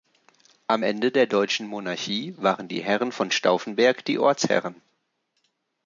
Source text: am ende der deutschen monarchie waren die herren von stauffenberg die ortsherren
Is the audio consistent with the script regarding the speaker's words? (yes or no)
yes